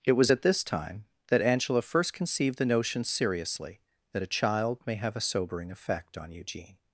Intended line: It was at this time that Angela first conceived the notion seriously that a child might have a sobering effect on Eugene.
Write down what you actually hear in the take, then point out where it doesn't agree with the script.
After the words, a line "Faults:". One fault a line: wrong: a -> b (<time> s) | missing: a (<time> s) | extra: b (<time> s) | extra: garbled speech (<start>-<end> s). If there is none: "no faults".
It was at this time that Angela first conceived the notion seriously that a child may have a sobering effect on Eugene.
Faults:
wrong: might -> may (4.9 s)